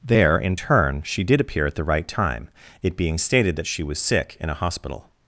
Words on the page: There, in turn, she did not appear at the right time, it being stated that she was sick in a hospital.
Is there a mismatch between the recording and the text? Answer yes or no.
yes